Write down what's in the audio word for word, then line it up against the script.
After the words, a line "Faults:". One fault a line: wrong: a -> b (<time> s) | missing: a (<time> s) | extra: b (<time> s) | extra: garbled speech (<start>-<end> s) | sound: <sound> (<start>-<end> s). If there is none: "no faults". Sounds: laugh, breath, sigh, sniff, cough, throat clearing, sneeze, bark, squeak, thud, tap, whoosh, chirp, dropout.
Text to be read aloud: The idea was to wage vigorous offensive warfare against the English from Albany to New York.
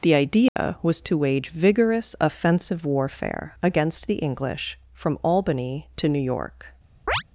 The idea was to wage vigorous offensive warfare against the English from Albany to New York.
Faults:
sound: dropout (0.5-0.6 s)
sound: chirp (7.1-7.2 s)